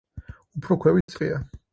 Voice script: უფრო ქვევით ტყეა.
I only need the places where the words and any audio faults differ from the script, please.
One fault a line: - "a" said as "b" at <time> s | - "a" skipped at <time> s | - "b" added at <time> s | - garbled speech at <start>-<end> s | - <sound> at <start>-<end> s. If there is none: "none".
- dropout at 1.0-1.1 s